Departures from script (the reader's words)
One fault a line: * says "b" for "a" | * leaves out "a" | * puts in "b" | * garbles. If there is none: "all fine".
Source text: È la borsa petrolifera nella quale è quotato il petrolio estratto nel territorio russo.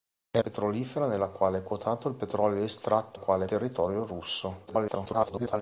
* leaves out "la borsa"
* says "quale" for "nel"
* garbles